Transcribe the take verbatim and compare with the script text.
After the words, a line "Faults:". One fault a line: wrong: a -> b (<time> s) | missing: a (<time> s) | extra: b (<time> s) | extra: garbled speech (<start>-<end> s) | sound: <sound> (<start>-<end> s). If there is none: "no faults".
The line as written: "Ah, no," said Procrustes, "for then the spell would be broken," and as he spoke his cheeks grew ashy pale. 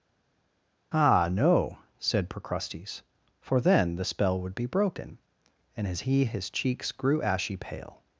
"Ah, no," said Procrustes, "for then the spell would be broken," and as he his cheeks grew ashy pale.
Faults:
missing: spoke (6.2 s)